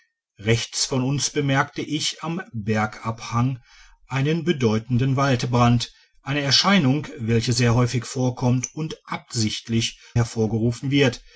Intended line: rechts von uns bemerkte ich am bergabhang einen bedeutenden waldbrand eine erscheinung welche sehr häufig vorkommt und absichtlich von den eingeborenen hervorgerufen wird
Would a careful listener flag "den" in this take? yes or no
yes